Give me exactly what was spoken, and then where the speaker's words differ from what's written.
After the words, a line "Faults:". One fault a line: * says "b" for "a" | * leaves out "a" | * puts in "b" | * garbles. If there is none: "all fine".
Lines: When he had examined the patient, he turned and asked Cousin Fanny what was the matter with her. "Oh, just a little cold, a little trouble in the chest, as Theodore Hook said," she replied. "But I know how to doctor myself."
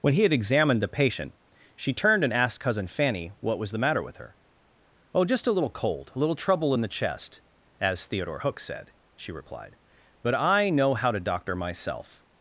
When he had examined the patient, she turned and asked Cousin Fanny what was the matter with her. "Oh, just a little cold, a little trouble in the chest, as Theodore Hook said," she replied. "But I know how to doctor myself."
Faults:
* says "she" for "he"